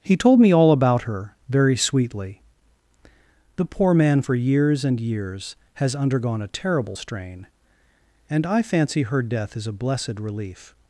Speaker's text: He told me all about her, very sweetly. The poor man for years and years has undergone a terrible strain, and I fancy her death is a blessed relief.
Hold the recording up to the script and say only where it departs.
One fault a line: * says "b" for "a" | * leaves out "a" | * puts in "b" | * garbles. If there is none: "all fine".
all fine